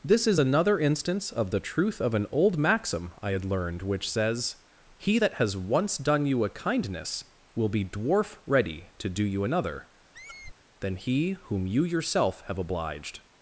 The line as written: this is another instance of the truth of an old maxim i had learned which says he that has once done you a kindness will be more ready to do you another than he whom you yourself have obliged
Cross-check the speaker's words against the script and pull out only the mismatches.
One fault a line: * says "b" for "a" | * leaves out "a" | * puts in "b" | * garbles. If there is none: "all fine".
* says "dwarf" for "more"